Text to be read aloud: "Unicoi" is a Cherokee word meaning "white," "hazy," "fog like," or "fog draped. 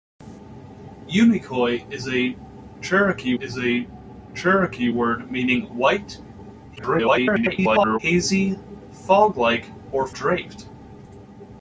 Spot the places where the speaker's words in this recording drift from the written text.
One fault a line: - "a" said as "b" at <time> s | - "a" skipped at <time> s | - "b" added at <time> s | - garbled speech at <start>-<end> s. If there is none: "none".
- "is a Cherokee" added at 3.4 s
- garbled speech at 6.8-8.0 s
- "fog" skipped at 10.1 s